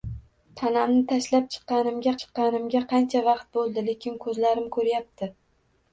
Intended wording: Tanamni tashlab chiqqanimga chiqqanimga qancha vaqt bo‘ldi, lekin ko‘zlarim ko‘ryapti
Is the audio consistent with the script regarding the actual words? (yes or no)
yes